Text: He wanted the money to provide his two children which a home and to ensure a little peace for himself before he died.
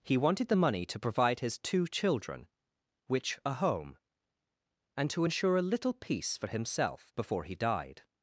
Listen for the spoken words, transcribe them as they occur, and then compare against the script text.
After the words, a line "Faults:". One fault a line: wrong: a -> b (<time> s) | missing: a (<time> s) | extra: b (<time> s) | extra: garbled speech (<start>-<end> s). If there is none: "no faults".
He wanted the money to provide his two children which a home and to ensure a little peace for himself before he died.
Faults:
no faults